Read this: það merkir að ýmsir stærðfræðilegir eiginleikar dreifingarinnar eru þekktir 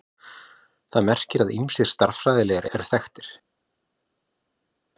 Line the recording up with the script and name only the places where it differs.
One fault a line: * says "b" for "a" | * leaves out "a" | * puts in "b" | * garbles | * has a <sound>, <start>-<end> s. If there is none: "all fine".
* leaves out "eiginleikar dreifingarinnar"